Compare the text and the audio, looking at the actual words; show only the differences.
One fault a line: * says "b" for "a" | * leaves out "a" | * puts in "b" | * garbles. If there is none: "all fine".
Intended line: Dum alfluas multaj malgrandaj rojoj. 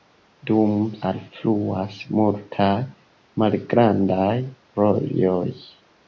all fine